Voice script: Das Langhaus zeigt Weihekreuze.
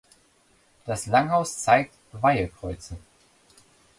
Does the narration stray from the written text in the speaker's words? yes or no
no